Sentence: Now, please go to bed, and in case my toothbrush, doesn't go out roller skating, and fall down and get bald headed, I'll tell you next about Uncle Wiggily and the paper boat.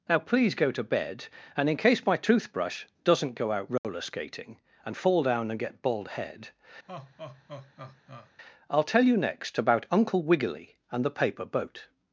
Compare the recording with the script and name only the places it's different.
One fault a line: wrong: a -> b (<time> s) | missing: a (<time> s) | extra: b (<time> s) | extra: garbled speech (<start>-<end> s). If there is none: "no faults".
wrong: headed -> head (6.1 s)